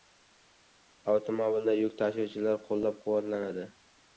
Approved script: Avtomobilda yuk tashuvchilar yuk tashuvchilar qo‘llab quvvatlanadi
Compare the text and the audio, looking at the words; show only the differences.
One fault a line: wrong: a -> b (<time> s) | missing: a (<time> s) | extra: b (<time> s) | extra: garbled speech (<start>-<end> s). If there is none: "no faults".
missing: yuk tashuvchilar (2.6 s)